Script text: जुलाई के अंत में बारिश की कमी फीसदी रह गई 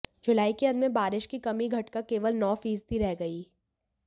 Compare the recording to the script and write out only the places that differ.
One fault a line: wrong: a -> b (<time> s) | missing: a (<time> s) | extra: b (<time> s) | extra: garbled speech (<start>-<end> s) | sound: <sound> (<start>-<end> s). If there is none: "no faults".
extra: घटकर केवल नौ (1.7 s)